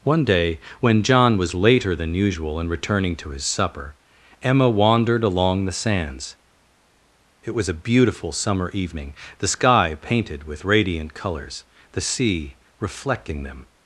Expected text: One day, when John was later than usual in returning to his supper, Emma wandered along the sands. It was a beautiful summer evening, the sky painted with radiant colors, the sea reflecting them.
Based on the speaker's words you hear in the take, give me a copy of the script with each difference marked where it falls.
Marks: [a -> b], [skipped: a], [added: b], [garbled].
One day, when John was later than usual in returning to his supper, Emma wandered along the sands. It was a beautiful summer evening, the sky painted with radiant colors, the sea reflecting them.